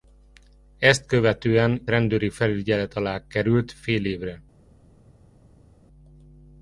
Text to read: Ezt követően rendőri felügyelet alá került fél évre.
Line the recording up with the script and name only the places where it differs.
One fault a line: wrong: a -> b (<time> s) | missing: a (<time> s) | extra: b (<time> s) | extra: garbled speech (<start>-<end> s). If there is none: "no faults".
no faults